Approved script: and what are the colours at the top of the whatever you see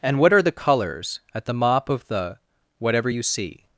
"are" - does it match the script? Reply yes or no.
yes